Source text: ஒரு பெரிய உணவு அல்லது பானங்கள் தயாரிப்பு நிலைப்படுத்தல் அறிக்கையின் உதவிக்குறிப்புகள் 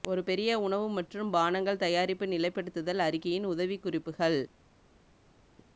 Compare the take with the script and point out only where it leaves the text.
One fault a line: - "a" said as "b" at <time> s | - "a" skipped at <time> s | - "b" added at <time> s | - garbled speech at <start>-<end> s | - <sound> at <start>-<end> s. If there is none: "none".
- "அல்லது" said as "மற்றும்" at 0.9 s